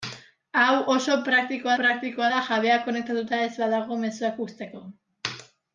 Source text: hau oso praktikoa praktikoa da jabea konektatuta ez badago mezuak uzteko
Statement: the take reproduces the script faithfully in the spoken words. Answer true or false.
true